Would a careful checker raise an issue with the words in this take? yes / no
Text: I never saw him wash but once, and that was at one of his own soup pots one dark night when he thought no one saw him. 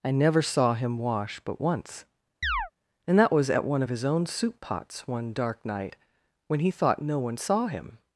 no